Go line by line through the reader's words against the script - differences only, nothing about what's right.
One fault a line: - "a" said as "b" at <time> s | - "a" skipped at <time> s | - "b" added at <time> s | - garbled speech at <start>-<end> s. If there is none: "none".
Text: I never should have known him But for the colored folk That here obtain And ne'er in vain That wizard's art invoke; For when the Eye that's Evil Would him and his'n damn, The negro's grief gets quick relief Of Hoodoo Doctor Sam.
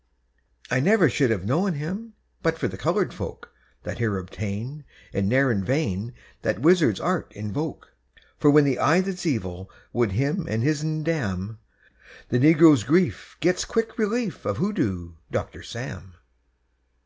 none